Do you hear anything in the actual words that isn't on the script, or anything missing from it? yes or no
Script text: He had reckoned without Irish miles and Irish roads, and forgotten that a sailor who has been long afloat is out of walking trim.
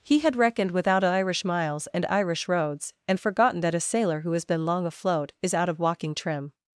no